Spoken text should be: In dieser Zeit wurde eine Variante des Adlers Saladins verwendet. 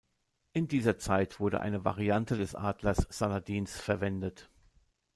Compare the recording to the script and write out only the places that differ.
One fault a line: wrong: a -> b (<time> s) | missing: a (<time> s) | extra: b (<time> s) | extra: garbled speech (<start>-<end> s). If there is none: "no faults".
no faults